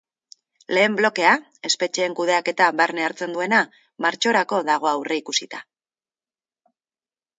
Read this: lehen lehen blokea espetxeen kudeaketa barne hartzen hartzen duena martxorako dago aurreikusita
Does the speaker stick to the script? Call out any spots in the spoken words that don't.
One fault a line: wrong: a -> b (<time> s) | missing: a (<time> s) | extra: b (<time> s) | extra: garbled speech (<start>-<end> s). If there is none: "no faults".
missing: lehen (0.9 s)
missing: hartzen (3.3 s)